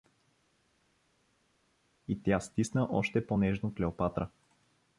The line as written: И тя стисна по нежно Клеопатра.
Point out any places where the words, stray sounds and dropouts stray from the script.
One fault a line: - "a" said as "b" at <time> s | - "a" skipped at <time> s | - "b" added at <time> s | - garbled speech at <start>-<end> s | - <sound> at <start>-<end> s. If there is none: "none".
- "още" added at 2.9 s